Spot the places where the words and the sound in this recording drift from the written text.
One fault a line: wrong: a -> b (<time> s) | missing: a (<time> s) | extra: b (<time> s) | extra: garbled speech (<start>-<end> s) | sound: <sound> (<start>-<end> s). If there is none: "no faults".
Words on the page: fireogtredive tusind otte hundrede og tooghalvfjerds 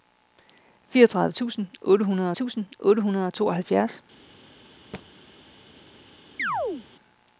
extra: tusind otte hundrede (2.3 s)
sound: thud (4.9-5.1 s)
sound: chirp (6.4-6.9 s)